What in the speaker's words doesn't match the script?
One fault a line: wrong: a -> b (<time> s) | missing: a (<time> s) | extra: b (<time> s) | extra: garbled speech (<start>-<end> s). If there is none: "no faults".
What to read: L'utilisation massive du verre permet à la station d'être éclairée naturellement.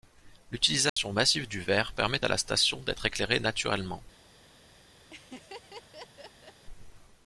no faults